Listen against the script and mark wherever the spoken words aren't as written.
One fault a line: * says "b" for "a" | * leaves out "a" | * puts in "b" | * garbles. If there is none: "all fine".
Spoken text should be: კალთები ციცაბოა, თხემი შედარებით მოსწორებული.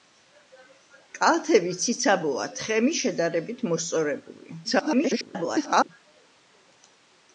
* garbles